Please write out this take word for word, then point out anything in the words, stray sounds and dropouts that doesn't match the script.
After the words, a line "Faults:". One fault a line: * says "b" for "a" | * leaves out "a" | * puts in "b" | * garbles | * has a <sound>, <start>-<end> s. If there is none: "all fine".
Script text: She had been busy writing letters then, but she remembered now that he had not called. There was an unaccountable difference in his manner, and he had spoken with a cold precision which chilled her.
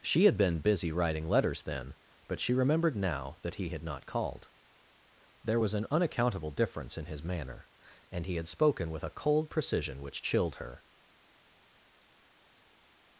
She had been busy writing letters then, but she remembered now that he had not called. There was an unaccountable difference in his manner, and he had spoken with a cold precision which chilled her.
Faults:
all fine